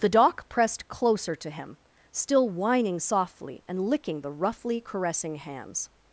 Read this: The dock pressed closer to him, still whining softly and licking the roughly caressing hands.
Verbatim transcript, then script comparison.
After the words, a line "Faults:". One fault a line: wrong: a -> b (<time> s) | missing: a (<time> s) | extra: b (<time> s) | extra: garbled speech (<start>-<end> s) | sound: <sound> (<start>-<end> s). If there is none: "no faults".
The dock pressed closer to him, still whining softly and licking the roughly caressing hands.
Faults:
no faults